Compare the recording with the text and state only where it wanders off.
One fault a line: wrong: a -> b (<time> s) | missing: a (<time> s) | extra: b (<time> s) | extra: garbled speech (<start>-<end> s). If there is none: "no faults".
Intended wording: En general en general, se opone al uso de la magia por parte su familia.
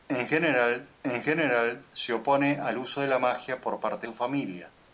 no faults